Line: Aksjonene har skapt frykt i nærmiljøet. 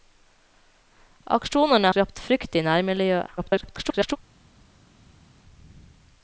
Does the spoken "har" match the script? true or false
false